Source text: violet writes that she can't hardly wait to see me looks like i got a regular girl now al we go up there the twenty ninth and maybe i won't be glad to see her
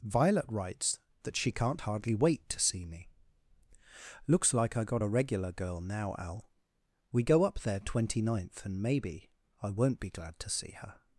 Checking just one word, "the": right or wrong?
wrong